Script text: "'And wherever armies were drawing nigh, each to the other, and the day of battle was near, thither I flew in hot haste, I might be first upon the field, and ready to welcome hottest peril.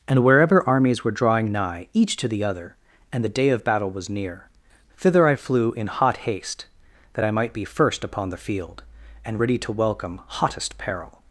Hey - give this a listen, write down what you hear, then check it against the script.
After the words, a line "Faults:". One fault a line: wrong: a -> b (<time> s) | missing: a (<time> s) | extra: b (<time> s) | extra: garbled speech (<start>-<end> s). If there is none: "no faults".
"'And wherever armies were drawing nigh, each to the other, and the day of battle was near, thither I flew in hot haste, that I might be first upon the field, and ready to welcome hottest peril.
Faults:
extra: that (7.1 s)